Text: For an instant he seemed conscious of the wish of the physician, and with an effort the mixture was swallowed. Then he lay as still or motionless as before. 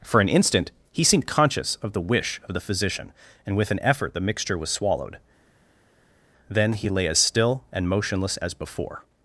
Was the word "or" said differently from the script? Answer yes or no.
yes